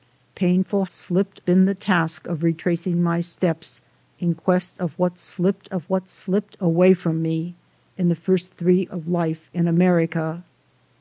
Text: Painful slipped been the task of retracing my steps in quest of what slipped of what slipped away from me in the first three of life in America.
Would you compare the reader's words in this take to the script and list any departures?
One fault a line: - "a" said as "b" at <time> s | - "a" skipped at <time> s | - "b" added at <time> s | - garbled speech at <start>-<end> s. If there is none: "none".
none